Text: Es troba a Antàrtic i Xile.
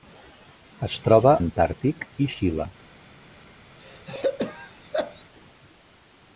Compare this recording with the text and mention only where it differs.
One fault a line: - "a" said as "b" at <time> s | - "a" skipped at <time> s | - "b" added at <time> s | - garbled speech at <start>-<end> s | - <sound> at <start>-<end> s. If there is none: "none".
- throat clearing at 3.8-5.2 s